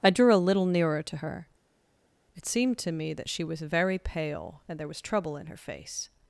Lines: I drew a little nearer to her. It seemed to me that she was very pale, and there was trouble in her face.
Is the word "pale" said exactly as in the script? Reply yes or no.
yes